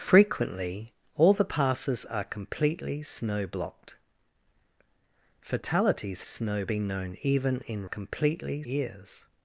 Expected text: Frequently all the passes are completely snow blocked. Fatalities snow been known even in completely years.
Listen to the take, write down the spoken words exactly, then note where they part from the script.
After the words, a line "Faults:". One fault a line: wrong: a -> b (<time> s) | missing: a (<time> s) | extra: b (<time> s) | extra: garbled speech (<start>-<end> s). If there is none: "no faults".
Frequently all the passes are completely snow blocked. Fatalities snow been known even in completely years.
Faults:
no faults